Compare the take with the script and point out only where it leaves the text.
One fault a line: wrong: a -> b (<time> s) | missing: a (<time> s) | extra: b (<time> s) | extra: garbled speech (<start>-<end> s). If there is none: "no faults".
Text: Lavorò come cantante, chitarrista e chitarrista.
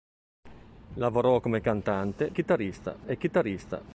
no faults